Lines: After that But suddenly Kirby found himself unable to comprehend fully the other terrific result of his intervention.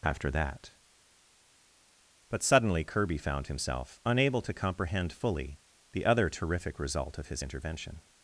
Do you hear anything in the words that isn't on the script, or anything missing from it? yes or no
no